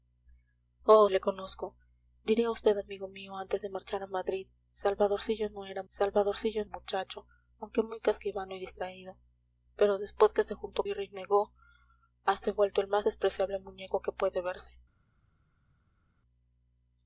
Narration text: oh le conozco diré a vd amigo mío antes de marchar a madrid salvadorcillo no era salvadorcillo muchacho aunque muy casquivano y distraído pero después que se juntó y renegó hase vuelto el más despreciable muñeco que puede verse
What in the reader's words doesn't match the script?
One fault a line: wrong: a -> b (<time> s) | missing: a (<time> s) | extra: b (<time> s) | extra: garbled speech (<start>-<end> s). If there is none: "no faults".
no faults